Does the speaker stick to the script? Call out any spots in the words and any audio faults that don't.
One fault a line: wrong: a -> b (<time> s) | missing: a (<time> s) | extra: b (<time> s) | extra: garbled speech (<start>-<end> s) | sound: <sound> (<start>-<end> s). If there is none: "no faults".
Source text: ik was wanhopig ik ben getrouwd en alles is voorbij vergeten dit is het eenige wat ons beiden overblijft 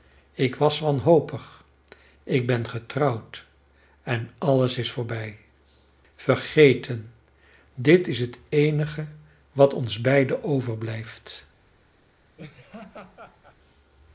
sound: laugh (12.4-13.6 s)